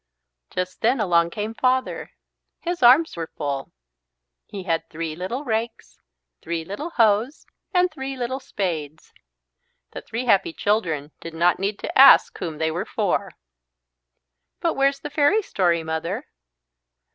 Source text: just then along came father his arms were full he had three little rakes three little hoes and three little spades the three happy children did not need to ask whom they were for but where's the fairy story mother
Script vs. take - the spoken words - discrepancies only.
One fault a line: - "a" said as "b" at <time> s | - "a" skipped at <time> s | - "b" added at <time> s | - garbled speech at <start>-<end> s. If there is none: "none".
none